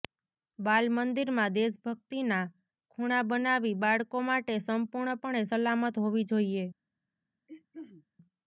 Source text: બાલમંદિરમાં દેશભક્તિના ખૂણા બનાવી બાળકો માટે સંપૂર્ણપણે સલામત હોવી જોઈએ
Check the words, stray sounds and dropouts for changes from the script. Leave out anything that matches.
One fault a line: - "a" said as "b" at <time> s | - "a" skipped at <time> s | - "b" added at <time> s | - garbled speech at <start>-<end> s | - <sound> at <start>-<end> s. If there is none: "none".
- throat clearing at 7.5-8.1 s